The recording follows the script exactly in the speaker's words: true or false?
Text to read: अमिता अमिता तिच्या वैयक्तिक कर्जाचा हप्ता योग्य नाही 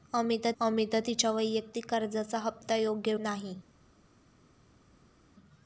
true